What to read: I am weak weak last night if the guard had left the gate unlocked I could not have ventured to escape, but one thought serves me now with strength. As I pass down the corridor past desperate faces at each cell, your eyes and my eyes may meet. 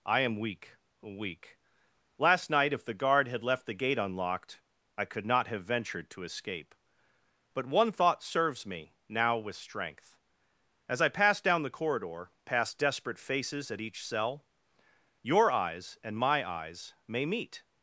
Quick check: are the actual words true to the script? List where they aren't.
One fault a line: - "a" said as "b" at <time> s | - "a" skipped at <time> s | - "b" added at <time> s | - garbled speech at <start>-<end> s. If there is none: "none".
none